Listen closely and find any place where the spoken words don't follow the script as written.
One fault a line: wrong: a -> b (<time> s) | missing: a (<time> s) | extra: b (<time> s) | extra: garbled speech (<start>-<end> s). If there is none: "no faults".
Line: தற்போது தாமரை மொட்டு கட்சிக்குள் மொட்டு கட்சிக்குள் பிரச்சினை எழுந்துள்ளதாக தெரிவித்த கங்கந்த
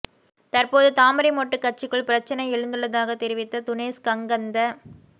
missing: மொட்டு கட்சிக்குள் (2.1 s)
extra: துனேஸ் (3.7 s)